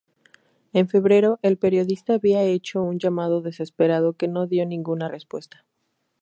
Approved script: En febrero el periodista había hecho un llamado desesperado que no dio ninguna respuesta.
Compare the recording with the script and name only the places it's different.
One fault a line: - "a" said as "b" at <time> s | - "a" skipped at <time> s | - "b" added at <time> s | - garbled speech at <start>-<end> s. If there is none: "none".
none